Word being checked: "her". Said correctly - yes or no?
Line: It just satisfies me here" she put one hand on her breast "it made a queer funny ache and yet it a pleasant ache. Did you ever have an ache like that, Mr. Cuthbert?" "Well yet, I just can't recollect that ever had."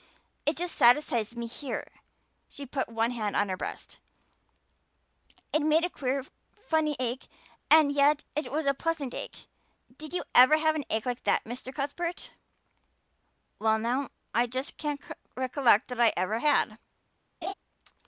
yes